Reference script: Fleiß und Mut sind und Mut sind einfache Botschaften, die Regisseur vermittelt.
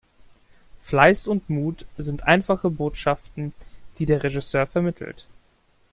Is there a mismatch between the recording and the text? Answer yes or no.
yes